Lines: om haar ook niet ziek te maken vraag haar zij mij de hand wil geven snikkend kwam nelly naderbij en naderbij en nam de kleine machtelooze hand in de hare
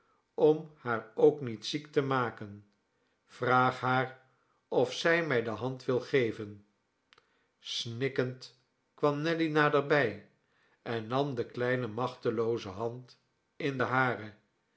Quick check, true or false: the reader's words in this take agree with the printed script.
false